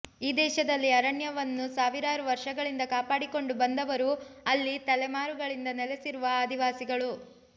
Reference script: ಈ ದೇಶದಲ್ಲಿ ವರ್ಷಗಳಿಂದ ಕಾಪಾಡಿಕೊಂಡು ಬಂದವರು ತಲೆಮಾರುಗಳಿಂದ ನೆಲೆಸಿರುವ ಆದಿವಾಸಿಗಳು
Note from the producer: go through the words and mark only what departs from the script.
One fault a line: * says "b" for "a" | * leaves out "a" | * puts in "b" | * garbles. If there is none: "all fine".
* puts in "ಅರಣ್ಯವನ್ನು ಸಾವಿರಾರು"
* puts in "ಅಲ್ಲಿ"